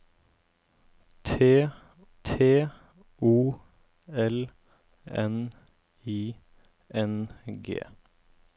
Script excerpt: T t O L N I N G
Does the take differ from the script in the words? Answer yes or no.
no